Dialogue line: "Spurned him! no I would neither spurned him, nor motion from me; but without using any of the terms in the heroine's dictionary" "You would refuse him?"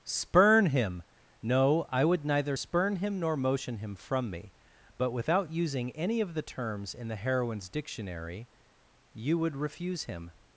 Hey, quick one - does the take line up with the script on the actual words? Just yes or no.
no